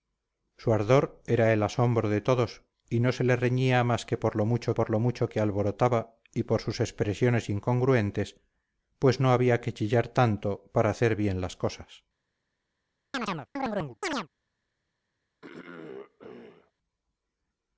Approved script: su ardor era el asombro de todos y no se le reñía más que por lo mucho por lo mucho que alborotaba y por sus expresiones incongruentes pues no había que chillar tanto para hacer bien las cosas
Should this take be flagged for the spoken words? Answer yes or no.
no